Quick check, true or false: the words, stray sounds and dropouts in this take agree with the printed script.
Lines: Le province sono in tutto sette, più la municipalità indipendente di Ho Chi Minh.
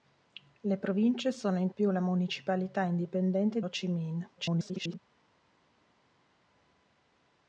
false